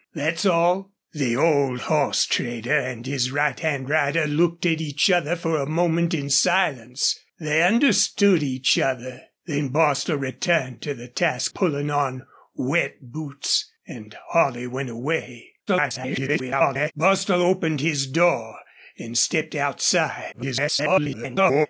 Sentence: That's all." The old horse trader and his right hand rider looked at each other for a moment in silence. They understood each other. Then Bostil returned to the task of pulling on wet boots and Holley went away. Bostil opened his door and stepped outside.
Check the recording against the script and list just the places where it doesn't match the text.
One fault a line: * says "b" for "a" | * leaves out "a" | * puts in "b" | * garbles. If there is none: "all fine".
* leaves out "of"
* garbles
* garbles